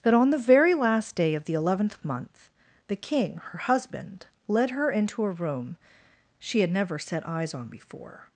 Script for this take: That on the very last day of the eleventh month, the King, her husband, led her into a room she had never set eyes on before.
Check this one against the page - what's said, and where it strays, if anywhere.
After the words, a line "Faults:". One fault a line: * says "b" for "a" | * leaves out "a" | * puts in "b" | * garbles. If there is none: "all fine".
That on the very last day of the eleventh month, the King, her husband, led her into a room she had never set eyes on before.
Faults:
all fine